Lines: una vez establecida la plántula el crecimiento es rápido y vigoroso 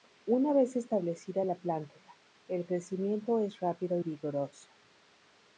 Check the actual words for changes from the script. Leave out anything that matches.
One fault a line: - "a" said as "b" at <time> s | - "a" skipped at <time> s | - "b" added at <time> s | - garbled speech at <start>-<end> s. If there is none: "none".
none